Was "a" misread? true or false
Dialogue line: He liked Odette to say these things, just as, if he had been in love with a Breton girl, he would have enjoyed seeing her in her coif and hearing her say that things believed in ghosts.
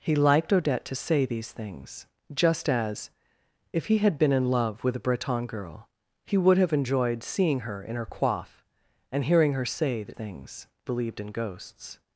false